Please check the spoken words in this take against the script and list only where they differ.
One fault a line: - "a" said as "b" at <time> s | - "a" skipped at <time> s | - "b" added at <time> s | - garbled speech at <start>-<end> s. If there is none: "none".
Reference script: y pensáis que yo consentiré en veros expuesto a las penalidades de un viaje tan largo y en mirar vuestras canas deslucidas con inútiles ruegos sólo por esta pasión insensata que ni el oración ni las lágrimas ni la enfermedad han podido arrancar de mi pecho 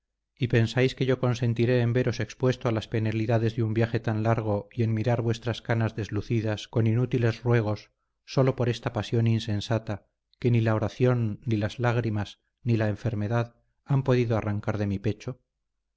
- "el" said as "la" at 10.6 s